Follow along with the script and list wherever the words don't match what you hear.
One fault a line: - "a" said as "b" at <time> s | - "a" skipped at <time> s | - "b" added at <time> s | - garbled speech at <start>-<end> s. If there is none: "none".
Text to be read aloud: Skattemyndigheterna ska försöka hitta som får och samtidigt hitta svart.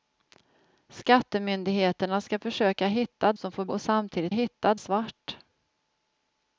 none